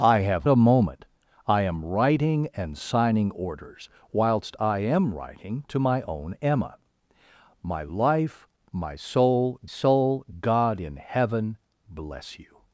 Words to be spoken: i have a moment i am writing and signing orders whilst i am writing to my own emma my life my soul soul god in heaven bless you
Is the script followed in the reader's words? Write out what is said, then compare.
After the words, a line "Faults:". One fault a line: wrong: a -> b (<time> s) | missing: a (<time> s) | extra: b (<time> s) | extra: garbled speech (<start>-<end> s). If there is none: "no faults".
i have a moment i am writing and signing orders whilst i am writing to my own emma my life my soul soul god in heaven bless you
Faults:
no faults